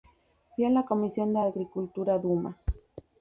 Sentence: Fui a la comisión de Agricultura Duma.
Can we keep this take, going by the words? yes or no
yes